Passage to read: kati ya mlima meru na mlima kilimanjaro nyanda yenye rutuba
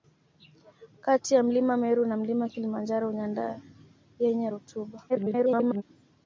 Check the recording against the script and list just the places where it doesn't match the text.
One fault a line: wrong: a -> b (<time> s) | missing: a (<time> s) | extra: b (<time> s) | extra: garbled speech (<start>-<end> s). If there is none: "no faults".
extra: garbled speech (5.1-5.8 s)